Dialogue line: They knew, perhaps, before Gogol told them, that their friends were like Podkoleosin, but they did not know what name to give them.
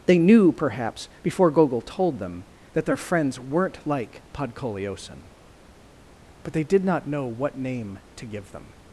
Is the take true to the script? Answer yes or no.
no